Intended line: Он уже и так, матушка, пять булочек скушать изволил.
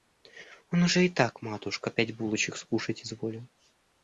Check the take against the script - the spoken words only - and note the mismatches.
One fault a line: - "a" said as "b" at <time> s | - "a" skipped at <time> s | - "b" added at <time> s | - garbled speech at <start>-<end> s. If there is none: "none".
none